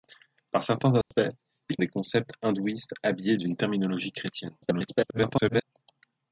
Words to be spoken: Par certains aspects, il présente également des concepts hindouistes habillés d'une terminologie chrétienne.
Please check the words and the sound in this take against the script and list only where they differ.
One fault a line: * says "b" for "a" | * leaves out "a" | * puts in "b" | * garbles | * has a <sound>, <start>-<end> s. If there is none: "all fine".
* has a dropout, 1.0-1.1 s
* leaves out "présente également"
* garbles